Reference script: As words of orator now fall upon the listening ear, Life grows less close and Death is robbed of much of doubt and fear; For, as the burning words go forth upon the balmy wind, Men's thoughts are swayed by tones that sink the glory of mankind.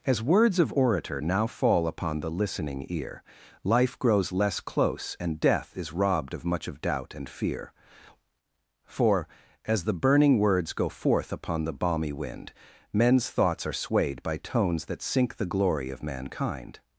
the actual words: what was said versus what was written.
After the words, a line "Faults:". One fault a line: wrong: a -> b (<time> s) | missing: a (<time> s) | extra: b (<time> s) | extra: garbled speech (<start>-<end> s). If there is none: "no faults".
As words of orator now fall upon the listening ear, Life grows less close and Death is robbed of much of doubt and fear; For, as the burning words go forth upon the balmy wind, Men's thoughts are swayed by tones that sink the glory of mankind.
Faults:
no faults